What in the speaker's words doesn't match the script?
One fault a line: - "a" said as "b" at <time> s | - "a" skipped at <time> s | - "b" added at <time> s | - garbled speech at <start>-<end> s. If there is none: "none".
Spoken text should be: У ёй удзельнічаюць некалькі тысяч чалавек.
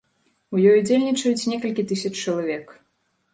none